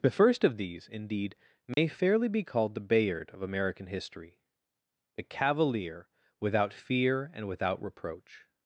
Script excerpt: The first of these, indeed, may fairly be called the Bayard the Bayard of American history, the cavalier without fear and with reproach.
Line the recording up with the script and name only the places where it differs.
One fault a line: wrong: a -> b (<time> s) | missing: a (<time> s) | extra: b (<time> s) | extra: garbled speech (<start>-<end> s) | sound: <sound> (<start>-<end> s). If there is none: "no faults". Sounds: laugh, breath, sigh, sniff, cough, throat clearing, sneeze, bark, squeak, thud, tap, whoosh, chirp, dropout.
sound: dropout (1.7-1.8 s)
missing: the Bayard (3.3 s)
wrong: with -> without (7.5 s)